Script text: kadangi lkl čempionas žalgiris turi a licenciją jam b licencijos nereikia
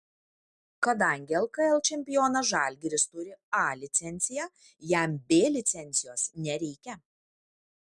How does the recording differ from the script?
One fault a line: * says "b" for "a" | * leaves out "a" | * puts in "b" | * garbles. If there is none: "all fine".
all fine